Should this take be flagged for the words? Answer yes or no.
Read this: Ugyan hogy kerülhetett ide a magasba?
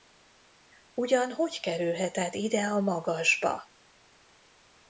no